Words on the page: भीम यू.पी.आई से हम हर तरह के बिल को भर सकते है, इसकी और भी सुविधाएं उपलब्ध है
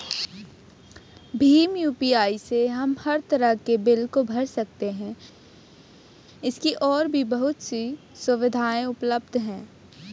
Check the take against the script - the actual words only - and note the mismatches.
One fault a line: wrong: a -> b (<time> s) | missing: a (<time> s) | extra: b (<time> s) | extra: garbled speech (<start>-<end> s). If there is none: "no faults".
extra: बहुत सी (7.3 s)